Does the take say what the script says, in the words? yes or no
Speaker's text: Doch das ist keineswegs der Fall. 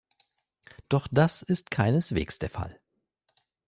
yes